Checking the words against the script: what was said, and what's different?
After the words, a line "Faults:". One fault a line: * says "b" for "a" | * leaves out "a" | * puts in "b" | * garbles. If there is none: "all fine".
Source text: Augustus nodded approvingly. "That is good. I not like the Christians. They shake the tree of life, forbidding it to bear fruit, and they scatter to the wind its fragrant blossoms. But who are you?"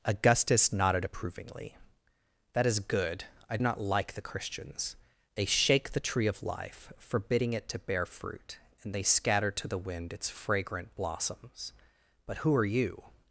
Augustus nodded approvingly. "That is good. I not like the Christians. They shake the tree of life, forbidding it to bear fruit, and they scatter to the wind its fragrant blossoms. But who are you?"
Faults:
all fine